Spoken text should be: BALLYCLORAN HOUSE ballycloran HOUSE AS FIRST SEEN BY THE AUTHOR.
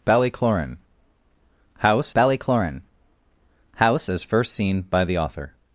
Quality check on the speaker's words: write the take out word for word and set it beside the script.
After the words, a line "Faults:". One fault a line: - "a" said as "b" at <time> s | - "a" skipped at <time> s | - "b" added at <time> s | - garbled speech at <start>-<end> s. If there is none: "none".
BALLYCLORAN HOUSE ballycloran HOUSE AS FIRST SEEN BY THE AUTHOR.
Faults:
none